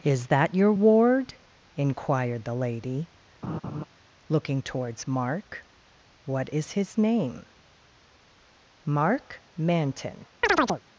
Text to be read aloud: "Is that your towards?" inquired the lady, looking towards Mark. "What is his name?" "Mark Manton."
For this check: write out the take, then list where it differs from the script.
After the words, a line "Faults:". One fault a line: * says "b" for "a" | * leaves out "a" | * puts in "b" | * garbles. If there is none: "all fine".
"Is that your ward?" inquired the lady, looking towards Mark. "What is his name?" "Mark Manton."
Faults:
* says "ward" for "towards"